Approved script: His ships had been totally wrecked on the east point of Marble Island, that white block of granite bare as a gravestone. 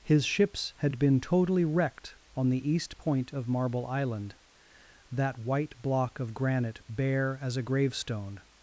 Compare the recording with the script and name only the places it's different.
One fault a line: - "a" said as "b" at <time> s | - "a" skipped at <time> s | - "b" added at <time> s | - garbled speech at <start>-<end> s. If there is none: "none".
none